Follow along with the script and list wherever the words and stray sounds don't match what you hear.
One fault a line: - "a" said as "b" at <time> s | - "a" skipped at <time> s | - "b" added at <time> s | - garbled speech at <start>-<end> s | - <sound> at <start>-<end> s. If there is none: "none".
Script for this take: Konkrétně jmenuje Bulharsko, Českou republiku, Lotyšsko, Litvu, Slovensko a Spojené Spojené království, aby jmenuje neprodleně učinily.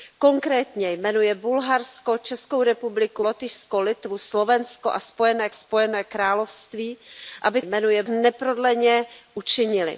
none